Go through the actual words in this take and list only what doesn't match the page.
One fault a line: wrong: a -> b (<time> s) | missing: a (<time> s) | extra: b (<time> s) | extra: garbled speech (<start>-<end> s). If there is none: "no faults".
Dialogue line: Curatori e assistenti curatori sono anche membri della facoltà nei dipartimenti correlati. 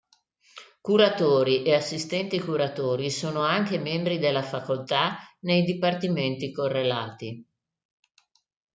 no faults